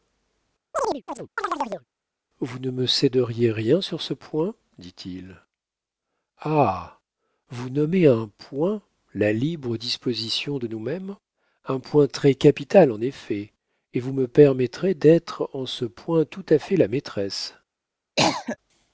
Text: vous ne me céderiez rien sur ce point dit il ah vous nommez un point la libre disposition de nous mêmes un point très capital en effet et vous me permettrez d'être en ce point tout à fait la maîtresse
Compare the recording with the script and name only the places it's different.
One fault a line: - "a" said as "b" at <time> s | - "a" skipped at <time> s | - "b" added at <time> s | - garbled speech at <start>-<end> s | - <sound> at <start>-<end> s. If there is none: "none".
- chirp at 0.7-1.9 s
- cough at 18.2-18.6 s